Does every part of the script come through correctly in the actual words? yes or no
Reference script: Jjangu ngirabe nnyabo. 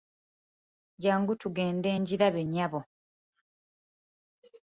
no